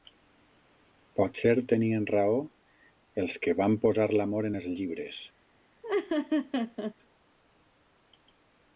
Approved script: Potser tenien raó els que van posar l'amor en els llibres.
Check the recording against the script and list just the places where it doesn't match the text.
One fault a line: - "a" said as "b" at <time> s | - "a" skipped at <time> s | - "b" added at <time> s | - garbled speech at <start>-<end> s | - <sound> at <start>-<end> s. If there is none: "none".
- laugh at 5.8-6.9 s